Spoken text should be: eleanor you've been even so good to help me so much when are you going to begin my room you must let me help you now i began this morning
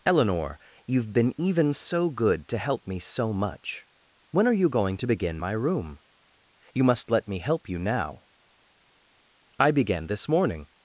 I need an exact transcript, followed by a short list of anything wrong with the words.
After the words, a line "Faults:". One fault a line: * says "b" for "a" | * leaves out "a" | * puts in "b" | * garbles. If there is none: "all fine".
eleanor you've been even so good to help me so much when are you going to begin my room you must let me help you now i began this morning
Faults:
all fine